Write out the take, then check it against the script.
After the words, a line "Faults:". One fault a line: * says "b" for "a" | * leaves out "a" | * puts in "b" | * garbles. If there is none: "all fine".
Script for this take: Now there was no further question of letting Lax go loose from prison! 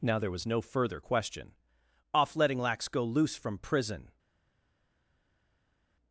Now there was no further question off letting Lax go loose from prison!
Faults:
* says "off" for "of"